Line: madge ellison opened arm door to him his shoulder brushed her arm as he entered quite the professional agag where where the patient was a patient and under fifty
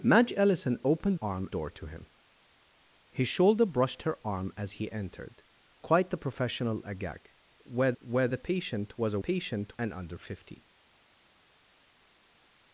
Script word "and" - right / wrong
right